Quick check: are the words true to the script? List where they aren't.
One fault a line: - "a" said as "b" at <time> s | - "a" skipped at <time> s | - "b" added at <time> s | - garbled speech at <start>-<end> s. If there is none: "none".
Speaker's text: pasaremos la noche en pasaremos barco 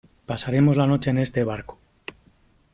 - "pasaremos" said as "este" at 1.2 s